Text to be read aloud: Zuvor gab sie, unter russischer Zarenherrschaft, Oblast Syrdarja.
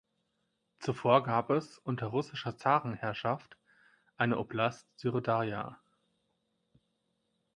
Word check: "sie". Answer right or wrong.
wrong